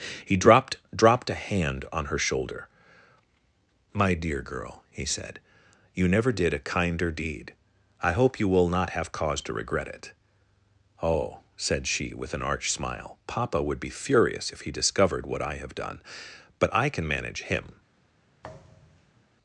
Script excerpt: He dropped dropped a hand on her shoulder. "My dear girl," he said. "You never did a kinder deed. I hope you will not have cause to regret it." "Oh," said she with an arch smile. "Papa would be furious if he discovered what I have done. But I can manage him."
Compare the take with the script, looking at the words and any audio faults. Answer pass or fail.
fail